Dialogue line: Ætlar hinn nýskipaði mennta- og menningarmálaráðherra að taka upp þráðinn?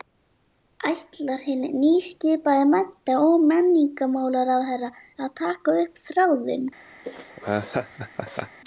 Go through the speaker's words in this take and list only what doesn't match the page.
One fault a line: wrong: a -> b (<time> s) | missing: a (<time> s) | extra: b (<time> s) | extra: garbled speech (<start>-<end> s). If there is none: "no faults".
no faults